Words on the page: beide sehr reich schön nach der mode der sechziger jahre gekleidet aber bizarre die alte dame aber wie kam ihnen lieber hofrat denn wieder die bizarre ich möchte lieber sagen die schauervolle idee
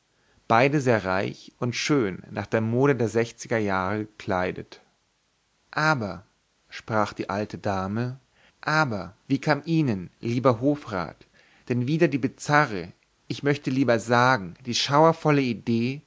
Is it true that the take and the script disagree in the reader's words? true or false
true